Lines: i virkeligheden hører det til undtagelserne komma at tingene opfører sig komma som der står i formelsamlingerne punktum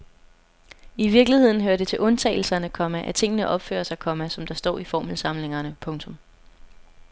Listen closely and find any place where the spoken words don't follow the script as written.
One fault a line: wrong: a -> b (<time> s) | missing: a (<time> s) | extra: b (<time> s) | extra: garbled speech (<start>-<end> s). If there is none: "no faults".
no faults